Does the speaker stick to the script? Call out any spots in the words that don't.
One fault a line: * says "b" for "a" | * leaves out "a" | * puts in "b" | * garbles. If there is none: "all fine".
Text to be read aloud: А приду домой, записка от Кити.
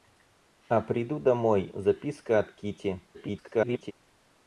* garbles